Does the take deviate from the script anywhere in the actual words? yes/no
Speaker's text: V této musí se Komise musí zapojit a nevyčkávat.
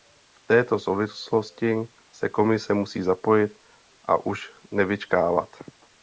yes